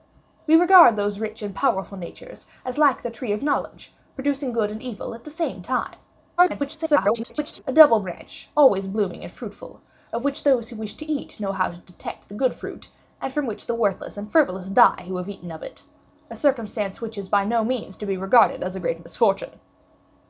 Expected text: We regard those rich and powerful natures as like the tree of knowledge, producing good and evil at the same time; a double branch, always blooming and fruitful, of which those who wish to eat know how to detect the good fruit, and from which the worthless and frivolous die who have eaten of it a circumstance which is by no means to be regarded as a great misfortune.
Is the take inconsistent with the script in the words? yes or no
yes